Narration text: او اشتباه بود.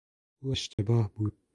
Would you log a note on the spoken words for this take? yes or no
no